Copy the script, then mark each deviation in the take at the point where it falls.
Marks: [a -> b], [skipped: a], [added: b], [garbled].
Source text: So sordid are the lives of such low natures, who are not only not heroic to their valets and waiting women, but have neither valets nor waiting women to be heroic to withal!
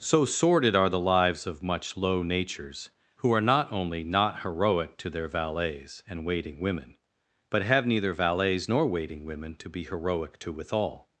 So sordid are the lives of [such -> much] low natures, who are not only not heroic to their valets and waiting women, but have neither valets nor waiting women to be heroic to withal!